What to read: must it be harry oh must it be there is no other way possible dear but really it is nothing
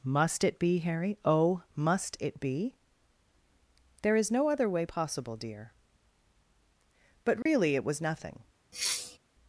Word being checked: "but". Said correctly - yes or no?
yes